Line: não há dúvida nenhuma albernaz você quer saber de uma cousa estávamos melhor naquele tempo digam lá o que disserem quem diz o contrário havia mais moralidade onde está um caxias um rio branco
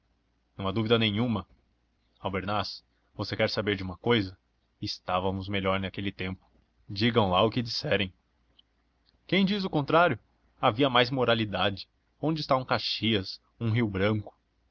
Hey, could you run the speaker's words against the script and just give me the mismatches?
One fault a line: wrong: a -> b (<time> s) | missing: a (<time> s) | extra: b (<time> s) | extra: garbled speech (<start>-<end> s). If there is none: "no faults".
no faults